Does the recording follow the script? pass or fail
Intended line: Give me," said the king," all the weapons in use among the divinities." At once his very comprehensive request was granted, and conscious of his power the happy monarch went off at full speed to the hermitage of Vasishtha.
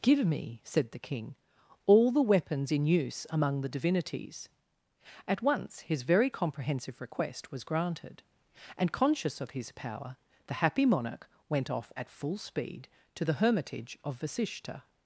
pass